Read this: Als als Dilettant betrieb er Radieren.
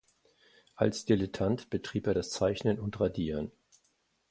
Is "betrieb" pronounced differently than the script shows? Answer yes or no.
no